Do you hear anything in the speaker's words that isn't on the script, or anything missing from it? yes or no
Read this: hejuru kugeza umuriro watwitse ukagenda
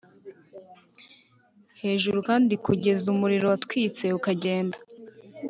yes